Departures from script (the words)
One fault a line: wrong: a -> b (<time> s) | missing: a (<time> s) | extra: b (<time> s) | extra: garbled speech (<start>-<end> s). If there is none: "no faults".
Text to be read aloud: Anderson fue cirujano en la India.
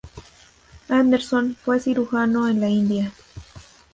no faults